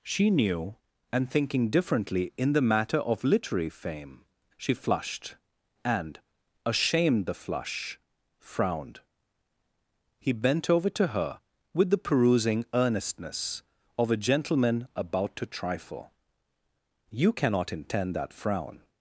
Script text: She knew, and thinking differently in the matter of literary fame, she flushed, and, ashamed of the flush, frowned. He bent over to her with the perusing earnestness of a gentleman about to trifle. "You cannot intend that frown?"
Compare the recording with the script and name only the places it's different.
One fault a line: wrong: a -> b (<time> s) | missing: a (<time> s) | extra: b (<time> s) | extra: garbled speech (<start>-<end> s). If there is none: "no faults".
missing: of (7.3 s)